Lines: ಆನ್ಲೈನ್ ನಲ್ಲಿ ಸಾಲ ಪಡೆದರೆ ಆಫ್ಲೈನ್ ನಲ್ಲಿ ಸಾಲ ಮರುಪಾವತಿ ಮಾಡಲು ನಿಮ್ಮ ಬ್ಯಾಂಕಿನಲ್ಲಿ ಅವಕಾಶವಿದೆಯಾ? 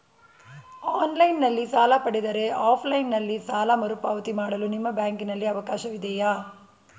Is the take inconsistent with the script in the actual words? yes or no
no